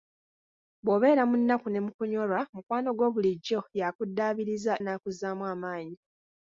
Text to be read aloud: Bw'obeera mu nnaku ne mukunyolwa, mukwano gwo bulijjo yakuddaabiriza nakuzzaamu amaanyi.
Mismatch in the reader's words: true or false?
false